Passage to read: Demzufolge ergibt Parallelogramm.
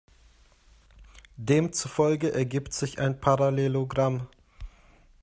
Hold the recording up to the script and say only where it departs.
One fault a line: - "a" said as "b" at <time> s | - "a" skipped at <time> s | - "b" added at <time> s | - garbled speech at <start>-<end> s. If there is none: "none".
- "sich ein" added at 2.7 s